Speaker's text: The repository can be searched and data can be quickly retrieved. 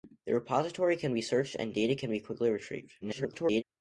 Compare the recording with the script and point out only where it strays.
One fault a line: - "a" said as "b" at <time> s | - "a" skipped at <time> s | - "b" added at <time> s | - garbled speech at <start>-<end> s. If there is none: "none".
- garbled speech at 3.0-3.6 s